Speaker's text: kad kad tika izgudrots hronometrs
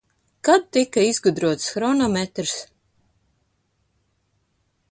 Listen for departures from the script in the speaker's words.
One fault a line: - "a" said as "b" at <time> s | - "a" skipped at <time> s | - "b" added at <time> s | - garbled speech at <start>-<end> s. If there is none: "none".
- "kad" skipped at 0.6 s